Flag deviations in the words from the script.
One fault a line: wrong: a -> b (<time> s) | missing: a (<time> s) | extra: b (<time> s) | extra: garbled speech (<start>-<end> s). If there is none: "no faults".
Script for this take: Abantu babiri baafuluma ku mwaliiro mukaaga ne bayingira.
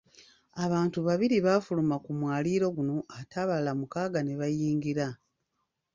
extra: guno ate abalala (2.7 s)